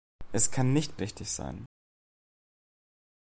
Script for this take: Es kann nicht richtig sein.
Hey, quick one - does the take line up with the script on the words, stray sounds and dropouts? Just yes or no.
yes